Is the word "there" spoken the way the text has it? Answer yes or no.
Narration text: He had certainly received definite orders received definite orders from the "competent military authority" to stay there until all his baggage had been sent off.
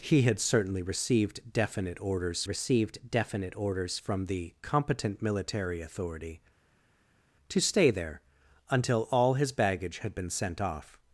yes